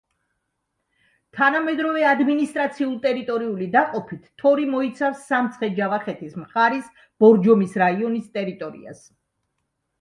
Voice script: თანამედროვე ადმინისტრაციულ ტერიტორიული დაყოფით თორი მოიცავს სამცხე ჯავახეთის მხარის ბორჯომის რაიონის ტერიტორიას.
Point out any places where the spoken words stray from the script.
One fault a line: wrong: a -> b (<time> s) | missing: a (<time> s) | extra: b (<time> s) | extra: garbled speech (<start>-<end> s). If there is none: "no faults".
no faults